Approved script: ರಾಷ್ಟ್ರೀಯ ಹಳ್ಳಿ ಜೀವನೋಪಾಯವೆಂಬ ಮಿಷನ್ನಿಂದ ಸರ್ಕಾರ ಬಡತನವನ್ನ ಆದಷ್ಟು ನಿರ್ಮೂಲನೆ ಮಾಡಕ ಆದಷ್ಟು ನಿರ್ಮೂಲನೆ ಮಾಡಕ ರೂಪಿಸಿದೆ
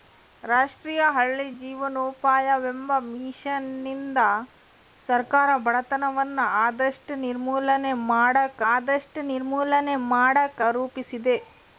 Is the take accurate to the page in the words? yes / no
yes